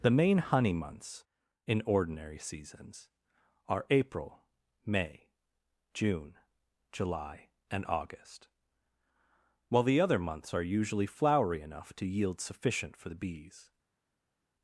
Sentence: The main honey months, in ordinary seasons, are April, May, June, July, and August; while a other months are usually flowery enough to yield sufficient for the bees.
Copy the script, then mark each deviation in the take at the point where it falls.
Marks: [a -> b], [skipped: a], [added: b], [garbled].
The main honey months, in ordinary seasons, are April, May, June, July, and August; while [a -> the] other months are usually flowery enough to yield sufficient for the bees.